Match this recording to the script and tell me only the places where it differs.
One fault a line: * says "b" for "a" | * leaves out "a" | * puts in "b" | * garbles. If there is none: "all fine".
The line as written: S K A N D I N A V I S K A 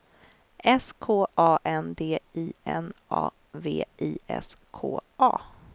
all fine